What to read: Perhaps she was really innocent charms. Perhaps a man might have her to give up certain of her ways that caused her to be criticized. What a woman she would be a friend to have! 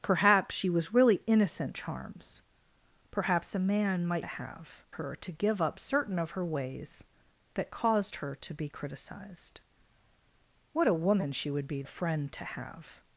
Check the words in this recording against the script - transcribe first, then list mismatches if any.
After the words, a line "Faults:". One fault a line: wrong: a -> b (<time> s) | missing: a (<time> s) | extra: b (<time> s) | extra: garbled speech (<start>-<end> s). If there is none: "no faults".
Perhaps she was really innocent charms. Perhaps a man might have her to give up certain of her ways that caused her to be criticized. What a woman she would be a friend to have!
Faults:
no faults